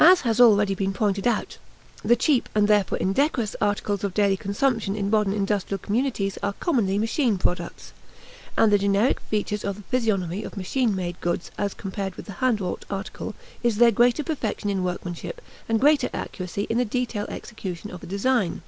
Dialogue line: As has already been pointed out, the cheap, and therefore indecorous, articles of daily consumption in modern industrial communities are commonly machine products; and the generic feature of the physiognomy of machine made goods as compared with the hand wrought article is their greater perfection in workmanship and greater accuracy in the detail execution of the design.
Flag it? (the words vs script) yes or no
no